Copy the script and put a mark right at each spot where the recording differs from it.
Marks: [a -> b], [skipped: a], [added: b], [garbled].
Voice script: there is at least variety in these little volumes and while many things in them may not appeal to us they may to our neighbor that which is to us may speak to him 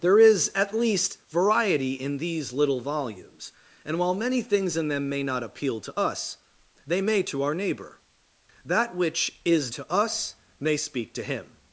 there is at least variety in these little volumes and while many things in them may not appeal to us they may to our neighbor that which is to us may speak to him